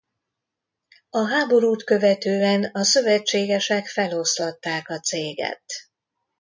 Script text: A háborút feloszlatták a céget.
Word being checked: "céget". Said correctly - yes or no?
yes